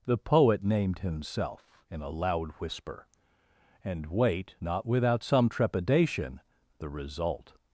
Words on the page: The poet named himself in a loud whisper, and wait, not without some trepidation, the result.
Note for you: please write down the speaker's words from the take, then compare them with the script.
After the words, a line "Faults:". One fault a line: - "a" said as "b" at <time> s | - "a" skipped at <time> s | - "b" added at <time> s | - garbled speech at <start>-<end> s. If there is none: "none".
The poet named himself in a loud whisper, and wait, not without some trepidation, the result.
Faults:
none